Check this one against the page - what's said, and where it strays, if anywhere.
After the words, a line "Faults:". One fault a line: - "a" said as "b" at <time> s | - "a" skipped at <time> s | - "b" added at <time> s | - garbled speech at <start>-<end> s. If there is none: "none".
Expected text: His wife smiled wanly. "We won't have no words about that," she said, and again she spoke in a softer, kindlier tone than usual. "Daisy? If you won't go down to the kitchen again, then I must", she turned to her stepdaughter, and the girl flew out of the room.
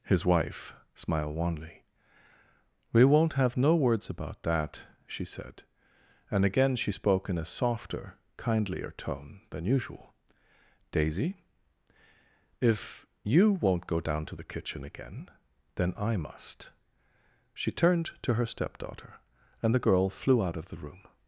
His wife smiled wanly. "We won't have no words about that," she said, and again she spoke in a softer, kindlier tone than usual. "Daisy? If you won't go down to the kitchen again, then I must", she turned to her stepdaughter, and the girl flew out of the room.
Faults:
none